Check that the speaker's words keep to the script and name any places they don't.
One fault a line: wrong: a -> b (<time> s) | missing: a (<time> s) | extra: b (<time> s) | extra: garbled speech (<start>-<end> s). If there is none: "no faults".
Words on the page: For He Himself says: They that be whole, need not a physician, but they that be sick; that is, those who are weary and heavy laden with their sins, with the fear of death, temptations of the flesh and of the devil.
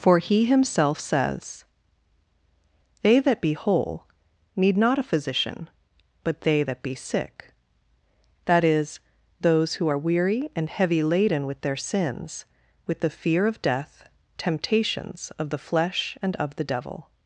no faults